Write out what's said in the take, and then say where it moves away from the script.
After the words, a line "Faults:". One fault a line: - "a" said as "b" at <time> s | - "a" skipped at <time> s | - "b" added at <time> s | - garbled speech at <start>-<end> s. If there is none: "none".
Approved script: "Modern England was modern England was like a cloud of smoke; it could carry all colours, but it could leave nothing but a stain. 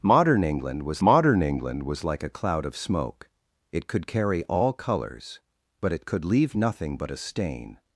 "Modern England was modern England was like a cloud of smoke; it could carry all colours, but it could leave nothing but a stain.
Faults:
none